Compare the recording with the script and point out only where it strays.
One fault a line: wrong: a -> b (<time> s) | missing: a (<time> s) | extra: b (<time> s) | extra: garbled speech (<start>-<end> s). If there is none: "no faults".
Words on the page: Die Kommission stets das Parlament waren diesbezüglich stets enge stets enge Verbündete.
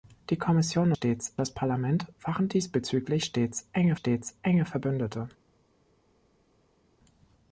no faults